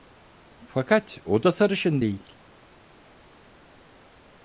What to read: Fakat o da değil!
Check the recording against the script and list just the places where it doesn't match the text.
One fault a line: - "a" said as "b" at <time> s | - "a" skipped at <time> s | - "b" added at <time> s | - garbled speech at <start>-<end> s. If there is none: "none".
- "sarışın" added at 1.5 s